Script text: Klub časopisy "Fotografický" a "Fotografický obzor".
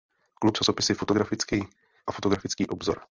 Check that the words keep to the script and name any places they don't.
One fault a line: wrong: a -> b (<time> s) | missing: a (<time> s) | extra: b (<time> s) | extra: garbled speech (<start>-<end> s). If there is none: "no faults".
no faults